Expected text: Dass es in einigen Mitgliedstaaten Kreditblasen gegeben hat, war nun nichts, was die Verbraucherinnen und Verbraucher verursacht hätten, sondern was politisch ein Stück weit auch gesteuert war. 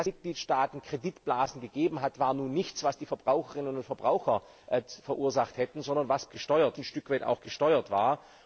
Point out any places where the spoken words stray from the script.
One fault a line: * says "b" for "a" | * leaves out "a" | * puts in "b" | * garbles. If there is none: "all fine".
* leaves out "es in einigen"
* says "gesteuert" for "politisch"